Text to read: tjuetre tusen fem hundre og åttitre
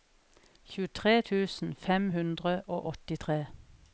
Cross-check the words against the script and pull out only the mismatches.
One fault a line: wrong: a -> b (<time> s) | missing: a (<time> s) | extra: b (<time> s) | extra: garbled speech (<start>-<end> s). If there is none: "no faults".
no faults